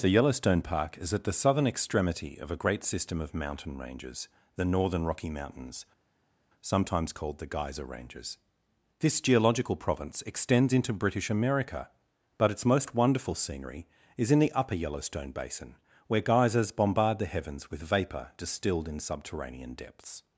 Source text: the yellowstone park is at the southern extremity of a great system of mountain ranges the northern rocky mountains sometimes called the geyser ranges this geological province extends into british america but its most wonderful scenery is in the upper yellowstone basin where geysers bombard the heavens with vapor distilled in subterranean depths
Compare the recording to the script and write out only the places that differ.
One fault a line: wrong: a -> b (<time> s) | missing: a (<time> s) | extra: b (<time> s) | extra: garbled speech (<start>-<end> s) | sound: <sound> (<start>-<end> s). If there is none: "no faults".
no faults